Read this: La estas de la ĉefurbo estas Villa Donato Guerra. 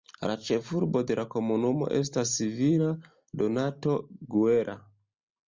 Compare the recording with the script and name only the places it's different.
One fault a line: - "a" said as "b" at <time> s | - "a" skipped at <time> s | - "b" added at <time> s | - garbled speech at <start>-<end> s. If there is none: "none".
- "estas" said as "ĉefurbo" at 0.5 s
- "ĉefurbo" said as "komunumo" at 1.3 s